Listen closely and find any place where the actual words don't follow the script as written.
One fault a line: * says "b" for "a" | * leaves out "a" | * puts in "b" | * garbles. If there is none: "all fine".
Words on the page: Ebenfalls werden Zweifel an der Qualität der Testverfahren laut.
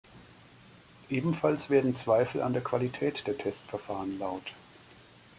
all fine